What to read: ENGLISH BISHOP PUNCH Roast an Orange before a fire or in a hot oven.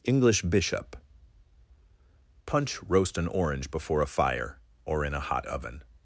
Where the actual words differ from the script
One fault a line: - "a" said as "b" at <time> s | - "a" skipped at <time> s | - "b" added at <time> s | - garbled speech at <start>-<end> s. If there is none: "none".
none